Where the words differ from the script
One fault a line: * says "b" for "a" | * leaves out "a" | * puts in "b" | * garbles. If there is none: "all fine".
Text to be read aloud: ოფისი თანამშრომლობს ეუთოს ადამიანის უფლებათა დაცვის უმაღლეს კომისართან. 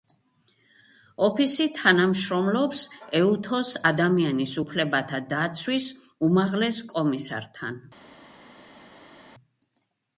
all fine